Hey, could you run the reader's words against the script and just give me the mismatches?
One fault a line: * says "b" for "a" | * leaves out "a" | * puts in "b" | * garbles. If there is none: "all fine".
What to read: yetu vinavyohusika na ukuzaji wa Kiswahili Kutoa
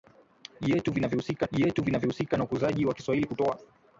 * puts in "yetu vinavyohusika"